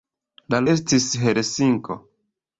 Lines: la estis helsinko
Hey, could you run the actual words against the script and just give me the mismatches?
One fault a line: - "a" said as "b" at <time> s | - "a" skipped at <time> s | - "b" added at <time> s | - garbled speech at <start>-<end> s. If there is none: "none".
none